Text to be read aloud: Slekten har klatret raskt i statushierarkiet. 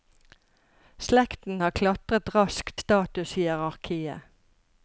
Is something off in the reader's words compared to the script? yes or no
yes